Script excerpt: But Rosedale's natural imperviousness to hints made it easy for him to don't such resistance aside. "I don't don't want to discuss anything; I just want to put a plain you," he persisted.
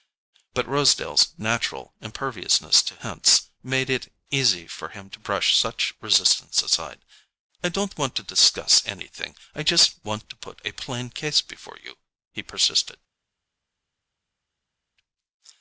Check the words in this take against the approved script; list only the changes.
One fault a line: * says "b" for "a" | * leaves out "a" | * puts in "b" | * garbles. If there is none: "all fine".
* says "brush" for "don't"
* leaves out "don't"
* puts in "case before"